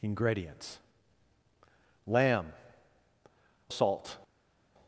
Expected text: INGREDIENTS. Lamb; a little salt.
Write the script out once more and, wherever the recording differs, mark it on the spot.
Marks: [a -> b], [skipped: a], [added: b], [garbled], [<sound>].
INGREDIENTS. Lamb; a [skipped: little] salt.